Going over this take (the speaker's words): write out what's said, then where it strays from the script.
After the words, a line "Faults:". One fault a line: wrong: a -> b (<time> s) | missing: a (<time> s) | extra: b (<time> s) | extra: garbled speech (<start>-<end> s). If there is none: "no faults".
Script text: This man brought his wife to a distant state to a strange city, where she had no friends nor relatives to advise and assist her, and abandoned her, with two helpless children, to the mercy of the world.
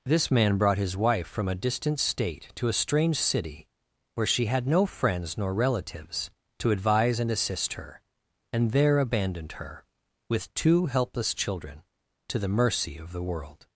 This man brought his wife from a distant state to a strange city, where she had no friends nor relatives to advise and assist her, and there abandoned her, with two helpless children, to the mercy of the world.
Faults:
wrong: to -> from (1.3 s)
extra: there (8.7 s)